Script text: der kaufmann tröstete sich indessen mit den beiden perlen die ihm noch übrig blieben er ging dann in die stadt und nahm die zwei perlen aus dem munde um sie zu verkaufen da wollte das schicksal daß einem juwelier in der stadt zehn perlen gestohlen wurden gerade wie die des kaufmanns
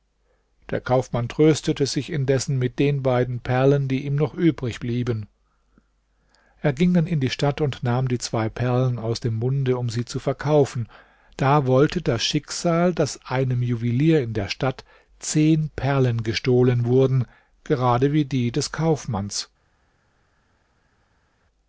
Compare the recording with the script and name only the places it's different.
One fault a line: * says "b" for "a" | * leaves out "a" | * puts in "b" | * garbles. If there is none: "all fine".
all fine